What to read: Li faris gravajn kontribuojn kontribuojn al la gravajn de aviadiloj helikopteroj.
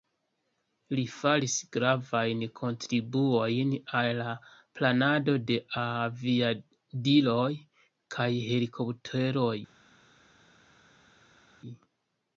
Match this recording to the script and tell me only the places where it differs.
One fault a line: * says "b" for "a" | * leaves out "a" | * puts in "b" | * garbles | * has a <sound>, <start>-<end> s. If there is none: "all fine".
* leaves out "kontribuojn"
* says "planado" for "gravajn"
* puts in "kaj"